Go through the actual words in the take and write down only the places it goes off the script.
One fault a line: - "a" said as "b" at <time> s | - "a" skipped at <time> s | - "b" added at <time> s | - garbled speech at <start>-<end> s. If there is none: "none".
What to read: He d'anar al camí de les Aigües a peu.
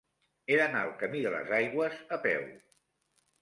none